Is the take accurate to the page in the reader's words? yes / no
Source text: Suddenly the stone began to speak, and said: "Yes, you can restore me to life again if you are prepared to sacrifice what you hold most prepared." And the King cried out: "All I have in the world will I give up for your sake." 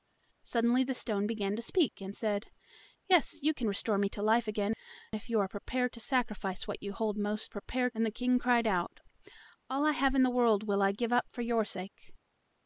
yes